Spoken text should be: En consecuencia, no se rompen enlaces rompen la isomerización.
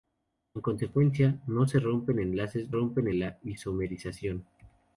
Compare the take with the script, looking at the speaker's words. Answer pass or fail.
pass